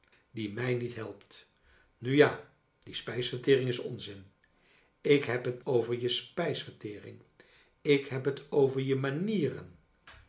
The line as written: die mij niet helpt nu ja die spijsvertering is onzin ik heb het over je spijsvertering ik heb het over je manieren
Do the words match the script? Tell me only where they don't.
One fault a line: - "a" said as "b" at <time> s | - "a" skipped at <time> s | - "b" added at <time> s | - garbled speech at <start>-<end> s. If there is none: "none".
none